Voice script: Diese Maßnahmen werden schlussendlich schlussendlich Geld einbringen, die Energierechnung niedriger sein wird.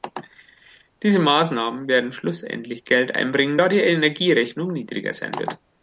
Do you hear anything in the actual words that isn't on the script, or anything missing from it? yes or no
yes